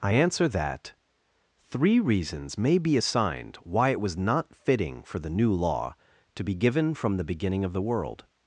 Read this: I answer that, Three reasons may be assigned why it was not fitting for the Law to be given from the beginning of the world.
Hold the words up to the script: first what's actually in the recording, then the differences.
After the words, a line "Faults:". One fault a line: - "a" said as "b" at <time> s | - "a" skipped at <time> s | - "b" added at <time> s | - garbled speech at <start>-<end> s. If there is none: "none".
I answer that, Three reasons may be assigned why it was not fitting for the New Law to be given from the beginning of the world.
Faults:
- "New" added at 5.3 s